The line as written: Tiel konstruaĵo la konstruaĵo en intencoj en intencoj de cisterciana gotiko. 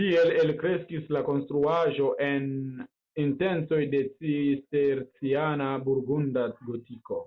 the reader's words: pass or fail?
fail